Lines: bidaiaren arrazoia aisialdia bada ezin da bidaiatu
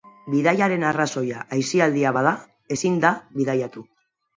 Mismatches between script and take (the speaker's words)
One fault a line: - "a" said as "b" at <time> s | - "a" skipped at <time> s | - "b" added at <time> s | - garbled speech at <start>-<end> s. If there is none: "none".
none